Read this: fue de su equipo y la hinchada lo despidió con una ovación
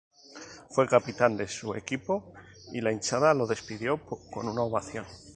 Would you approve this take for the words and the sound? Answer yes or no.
no